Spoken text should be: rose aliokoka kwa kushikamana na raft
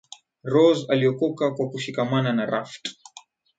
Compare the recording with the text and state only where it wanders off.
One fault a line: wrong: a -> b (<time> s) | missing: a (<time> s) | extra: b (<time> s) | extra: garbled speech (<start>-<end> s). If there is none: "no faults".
no faults